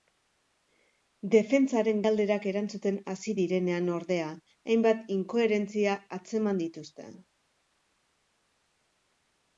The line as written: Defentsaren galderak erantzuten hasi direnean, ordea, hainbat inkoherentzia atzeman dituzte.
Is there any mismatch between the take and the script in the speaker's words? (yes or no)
no